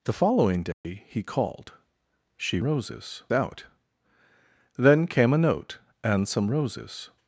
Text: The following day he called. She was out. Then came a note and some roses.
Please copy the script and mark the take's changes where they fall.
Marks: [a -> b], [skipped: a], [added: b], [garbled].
The following day he called. She [was -> roses] out. Then came a note and some roses.